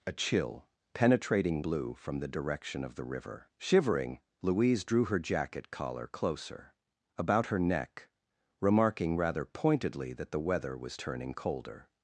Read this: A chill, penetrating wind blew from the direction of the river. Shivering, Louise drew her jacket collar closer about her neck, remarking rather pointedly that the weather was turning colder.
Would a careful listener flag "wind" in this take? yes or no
yes